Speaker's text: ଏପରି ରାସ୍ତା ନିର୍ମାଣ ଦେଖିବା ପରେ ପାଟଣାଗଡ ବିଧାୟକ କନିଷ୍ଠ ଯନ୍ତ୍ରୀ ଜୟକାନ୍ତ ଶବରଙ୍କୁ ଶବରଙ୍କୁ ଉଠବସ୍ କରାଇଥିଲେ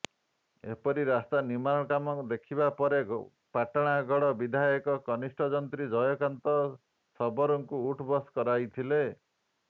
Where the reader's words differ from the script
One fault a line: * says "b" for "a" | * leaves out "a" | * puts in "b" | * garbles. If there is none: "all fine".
* puts in "କାମ"
* leaves out "ଶବରଙ୍କୁ"